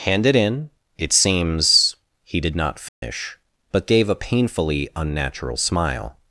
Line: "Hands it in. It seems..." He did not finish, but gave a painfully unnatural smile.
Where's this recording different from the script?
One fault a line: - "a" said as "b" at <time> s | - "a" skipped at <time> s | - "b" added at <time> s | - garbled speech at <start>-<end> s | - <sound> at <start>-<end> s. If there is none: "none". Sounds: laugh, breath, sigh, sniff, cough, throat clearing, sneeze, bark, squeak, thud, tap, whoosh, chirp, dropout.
- "Hands" said as "Hand" at 0.1 s
- dropout at 2.9-3.0 s